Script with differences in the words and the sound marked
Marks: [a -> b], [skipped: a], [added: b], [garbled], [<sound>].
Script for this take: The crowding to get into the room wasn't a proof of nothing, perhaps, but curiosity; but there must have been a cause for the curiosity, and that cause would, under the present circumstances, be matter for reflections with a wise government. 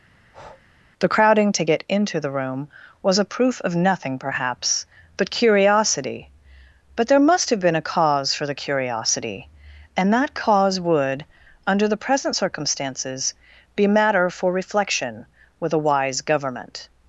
[breath] The crowding to get into the room [wasn't -> was] a proof of nothing, perhaps, but curiosity; but there must have been a cause for the curiosity, and that cause would, under the present circumstances, be matter for [reflections -> reflection] with a wise government.